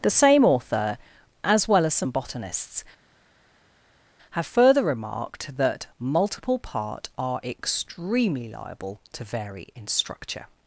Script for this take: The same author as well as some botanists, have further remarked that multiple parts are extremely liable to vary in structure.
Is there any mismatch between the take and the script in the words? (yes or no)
yes